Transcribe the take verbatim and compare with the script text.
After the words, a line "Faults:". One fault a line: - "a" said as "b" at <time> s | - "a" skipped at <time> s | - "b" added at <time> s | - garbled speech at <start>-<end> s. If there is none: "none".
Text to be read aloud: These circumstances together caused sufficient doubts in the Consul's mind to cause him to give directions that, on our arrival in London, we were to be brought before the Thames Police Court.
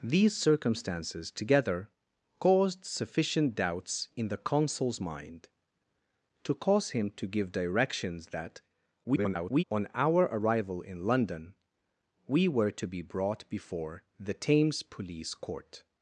These circumstances together caused sufficient doubts in the Consul's mind to cause him to give directions that, [garbled] on our arrival in London, we were to be brought before the Thames Police Court.
Faults:
- garbled speech at 9.0-9.6 s